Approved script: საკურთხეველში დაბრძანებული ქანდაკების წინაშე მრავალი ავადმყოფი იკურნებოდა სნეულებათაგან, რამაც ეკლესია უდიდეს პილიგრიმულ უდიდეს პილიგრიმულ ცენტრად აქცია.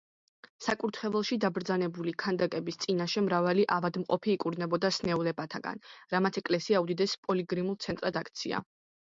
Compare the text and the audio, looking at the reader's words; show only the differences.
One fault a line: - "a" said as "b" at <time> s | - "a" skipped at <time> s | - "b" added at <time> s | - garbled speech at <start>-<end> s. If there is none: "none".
- "უდიდეს პილიგრიმულ" skipped at 7.8 s